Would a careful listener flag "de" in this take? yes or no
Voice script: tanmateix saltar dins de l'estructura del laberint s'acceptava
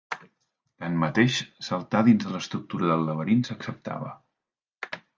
no